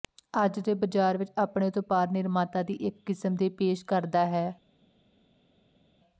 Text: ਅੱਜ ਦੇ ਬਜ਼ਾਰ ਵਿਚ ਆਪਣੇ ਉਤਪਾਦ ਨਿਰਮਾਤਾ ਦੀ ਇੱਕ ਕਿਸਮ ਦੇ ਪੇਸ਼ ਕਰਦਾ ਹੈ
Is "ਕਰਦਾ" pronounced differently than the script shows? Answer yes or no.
no